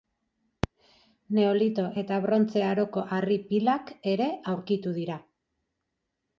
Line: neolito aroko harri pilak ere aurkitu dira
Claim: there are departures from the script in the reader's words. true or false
true